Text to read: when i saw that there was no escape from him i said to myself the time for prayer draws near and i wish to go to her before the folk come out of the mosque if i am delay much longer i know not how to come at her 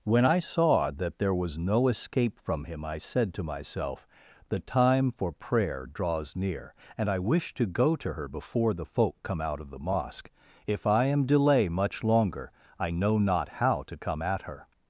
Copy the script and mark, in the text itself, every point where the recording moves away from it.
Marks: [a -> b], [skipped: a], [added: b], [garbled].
when i saw that there was no escape from him i said to myself the time for prayer draws near and i wish to go to her before the folk come out of the mosque if i am delay much longer i know not how to come at her